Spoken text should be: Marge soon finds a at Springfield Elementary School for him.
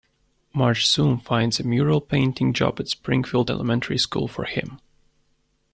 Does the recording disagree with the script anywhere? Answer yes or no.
yes